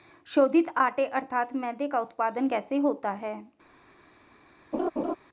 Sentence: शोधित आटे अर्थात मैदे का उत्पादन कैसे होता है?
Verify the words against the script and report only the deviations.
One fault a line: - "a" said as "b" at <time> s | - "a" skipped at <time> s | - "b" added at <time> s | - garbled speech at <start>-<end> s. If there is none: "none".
none